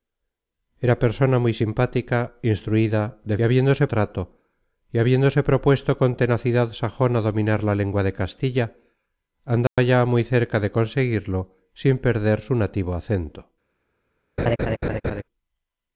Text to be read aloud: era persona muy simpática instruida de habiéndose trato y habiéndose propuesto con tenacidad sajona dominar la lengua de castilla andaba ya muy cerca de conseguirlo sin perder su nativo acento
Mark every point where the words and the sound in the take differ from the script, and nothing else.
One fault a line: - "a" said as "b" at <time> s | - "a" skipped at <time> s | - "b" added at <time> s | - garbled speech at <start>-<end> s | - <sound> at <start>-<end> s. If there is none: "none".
- dropout at 9.7-9.8 s
- laugh at 14.4-15.2 s